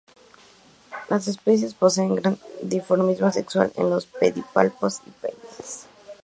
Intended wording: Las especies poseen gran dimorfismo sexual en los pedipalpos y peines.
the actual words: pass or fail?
pass